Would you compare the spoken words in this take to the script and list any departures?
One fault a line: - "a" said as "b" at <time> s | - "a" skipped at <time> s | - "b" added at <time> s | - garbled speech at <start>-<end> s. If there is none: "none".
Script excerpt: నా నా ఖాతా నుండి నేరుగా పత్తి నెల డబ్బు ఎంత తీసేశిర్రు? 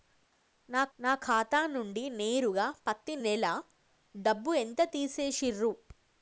none